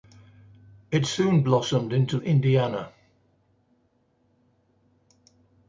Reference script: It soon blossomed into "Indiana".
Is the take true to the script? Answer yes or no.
yes